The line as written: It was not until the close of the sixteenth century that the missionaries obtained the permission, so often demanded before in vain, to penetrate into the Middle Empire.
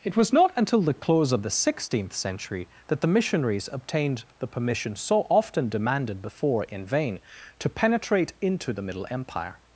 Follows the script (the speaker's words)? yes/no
yes